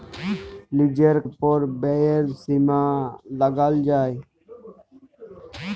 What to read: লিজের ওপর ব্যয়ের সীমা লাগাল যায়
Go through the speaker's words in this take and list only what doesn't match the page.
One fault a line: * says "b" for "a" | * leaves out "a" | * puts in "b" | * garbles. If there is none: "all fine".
all fine